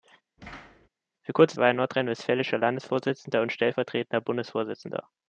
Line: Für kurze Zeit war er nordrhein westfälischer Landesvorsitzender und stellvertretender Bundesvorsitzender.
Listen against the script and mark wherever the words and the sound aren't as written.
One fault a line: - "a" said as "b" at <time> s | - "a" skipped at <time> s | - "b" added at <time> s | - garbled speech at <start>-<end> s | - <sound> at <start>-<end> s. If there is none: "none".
- thud at 0.4-0.9 s
- "Zeit" skipped at 1.6 s